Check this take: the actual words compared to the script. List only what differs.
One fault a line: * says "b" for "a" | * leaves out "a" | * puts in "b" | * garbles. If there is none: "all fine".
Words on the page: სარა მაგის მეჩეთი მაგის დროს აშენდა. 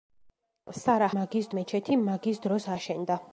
all fine